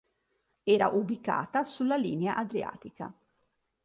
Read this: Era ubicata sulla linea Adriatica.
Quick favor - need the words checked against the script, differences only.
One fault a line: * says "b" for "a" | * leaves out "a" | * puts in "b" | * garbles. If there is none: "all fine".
all fine